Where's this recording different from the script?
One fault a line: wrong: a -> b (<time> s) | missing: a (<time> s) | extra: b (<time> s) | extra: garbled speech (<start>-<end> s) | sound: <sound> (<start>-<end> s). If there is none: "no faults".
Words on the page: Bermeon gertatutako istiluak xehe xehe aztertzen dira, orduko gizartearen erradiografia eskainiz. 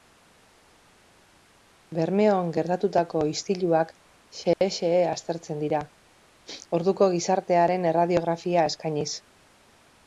sound: dropout (4.5-4.6 s)